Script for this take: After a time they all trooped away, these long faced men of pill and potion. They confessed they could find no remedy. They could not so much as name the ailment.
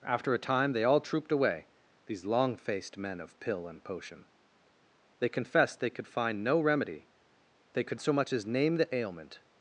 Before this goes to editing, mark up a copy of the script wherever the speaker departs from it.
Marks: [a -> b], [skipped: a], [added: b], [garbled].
After a time they all trooped away, these long faced men of pill and potion. They confessed they could find no remedy. They could [skipped: not] so much as name the ailment.